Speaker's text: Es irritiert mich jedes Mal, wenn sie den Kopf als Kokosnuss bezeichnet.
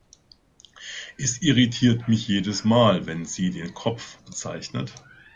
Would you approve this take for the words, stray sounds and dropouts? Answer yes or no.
no